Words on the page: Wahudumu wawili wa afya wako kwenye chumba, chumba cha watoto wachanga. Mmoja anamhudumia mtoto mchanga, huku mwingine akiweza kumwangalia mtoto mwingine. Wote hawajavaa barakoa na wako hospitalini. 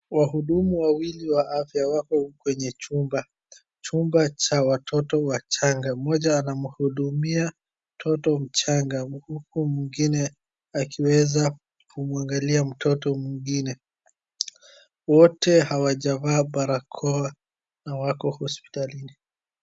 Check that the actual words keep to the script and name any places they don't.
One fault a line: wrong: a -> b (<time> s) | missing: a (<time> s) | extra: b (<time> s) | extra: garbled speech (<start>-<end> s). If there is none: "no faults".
no faults